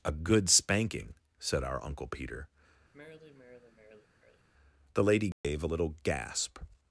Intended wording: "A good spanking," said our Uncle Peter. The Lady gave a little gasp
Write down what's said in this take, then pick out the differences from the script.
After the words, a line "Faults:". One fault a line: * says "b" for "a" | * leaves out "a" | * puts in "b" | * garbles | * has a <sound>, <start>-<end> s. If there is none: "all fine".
"A good spanking," said our Uncle Peter. The Lady gave a little gasp
Faults:
* has a sigh, 2.9-4.5 s
* has a dropout, 5.3-5.4 s